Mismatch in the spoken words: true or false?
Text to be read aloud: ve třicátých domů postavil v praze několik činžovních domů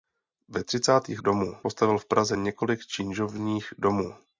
false